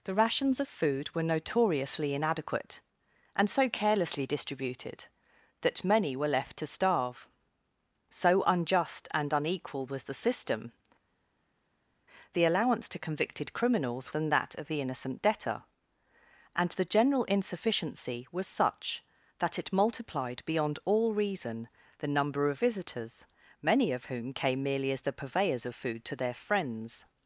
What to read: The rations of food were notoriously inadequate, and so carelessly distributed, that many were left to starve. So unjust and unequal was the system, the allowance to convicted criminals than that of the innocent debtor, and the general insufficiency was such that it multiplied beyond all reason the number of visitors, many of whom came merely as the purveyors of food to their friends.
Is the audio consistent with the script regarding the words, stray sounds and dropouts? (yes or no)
yes